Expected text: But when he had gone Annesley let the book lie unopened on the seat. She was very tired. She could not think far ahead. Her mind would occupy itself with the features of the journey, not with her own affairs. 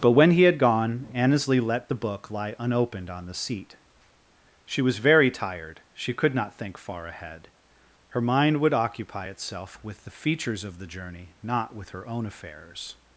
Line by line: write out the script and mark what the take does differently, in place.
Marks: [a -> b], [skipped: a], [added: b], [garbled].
But when he had gone Annesley let the book lie unopened on the seat. She was very tired. She could not think far ahead. Her mind would occupy itself with the features of the journey, not with her own affairs.